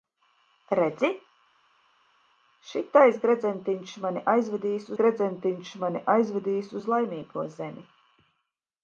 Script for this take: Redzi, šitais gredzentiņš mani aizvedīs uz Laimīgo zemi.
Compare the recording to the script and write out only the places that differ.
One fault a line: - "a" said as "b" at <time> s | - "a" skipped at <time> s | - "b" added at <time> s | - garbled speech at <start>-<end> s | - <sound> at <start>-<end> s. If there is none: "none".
- "gredzentiņš mani aizvedīs" added at 5.0 s